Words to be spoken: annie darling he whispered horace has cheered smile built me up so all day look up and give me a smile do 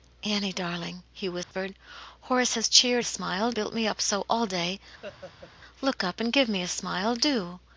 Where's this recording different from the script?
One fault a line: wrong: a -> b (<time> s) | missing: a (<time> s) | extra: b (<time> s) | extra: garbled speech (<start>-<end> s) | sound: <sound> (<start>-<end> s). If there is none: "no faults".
sound: dropout (1.4-1.5 s)
sound: laugh (5.0-5.5 s)